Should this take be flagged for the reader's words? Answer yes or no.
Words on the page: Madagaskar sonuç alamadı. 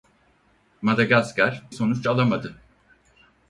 no